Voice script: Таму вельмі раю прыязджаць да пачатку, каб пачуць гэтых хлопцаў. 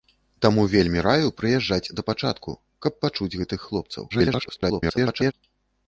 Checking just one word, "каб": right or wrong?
right